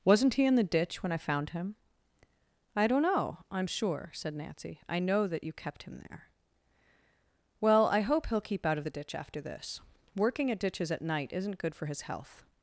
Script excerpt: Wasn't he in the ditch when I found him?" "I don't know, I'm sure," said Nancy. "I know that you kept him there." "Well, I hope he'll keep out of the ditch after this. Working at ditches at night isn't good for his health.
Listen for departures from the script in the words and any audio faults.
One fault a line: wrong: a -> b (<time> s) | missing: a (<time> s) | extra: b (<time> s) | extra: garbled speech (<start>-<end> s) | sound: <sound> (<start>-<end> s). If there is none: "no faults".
no faults